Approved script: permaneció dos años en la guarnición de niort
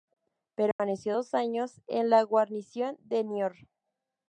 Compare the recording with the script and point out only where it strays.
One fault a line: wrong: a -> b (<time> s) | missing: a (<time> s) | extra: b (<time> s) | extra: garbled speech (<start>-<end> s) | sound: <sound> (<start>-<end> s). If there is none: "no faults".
sound: dropout (0.7-0.8 s)